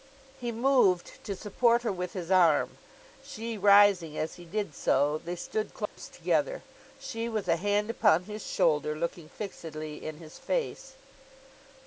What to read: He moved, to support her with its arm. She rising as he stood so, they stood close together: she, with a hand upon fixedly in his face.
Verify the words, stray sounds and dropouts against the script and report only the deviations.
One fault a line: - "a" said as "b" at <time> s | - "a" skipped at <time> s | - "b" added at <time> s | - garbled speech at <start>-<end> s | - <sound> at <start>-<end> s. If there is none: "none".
- "its" said as "his" at 2.1 s
- "stood" said as "did" at 4.4 s
- dropout at 5.9-6.0 s
- "his shoulder looking" added at 8.2 s